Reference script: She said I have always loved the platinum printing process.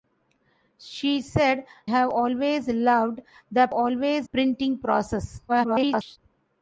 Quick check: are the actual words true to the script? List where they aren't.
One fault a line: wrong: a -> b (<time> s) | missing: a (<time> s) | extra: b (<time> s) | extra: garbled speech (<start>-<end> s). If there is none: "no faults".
missing: I (1.7 s)
wrong: platinum -> always (3.7 s)
extra: garbled speech (5.5-6.2 s)